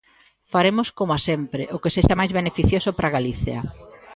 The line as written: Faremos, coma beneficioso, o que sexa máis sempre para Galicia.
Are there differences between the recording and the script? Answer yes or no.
yes